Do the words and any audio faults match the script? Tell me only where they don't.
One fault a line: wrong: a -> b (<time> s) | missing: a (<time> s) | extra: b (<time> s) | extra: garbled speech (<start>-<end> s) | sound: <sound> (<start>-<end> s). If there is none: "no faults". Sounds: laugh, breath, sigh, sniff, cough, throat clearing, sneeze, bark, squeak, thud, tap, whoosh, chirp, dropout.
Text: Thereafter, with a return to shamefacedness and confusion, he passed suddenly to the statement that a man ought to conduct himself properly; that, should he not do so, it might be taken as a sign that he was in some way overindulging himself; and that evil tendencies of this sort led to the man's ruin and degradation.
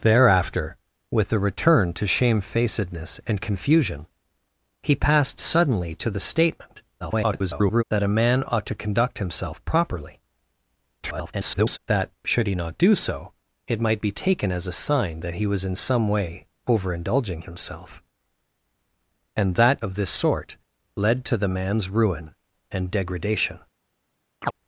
extra: garbled speech (7.0-7.8 s)
extra: garbled speech (11.0-11.8 s)
missing: evil tendencies (19.8 s)
sound: chirp (24.4-24.5 s)